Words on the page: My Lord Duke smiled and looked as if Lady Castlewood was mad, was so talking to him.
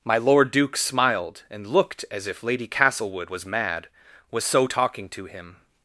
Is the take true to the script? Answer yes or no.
yes